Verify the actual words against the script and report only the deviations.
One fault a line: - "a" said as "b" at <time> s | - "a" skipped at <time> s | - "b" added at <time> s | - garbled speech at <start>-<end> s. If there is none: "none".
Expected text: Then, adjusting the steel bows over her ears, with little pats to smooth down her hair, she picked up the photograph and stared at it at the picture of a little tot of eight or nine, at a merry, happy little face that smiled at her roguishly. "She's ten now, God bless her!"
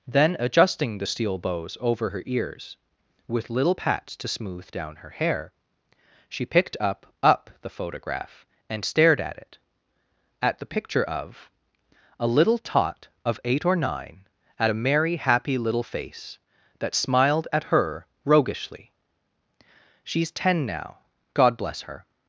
- "up" added at 7.2 s